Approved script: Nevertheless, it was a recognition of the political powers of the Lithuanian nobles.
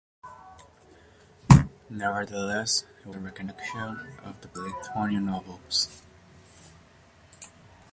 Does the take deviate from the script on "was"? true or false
true